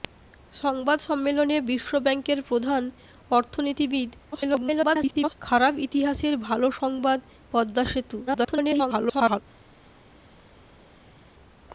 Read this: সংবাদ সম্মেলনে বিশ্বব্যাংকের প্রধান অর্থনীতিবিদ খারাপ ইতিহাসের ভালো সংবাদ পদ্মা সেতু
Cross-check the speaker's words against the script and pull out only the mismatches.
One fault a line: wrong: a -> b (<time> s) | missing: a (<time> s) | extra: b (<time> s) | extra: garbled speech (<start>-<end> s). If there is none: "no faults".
extra: garbled speech (4.3-5.3 s)
extra: garbled speech (8.3-9.4 s)